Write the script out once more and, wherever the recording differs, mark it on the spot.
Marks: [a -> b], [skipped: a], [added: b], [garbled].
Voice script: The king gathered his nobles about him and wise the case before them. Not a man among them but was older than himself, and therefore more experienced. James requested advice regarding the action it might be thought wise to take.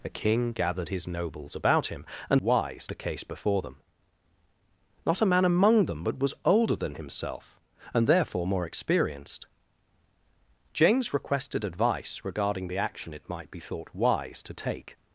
The king gathered his nobles about him and wise the case before them. Not a man among them but was older than himself, and therefore more experienced. James requested advice regarding the action it might be thought wise to take.